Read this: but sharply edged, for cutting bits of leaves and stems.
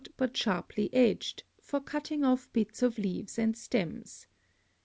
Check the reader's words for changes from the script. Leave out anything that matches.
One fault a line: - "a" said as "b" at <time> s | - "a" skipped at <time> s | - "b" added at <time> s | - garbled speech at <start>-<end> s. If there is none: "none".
- "off" added at 2.2 s